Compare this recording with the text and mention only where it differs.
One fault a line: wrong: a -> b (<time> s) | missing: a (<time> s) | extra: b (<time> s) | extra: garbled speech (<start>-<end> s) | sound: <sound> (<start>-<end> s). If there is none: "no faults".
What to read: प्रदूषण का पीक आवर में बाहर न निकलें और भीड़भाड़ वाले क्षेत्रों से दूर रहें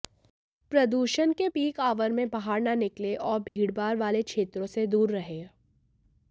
wrong: का -> के (1.3 s)
sound: dropout (3.5-3.6 s)